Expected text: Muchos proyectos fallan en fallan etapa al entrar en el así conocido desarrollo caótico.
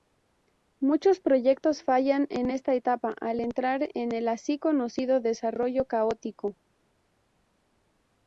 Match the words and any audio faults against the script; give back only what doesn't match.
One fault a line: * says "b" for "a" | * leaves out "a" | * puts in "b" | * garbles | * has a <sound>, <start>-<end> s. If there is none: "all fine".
* says "esta" for "fallan"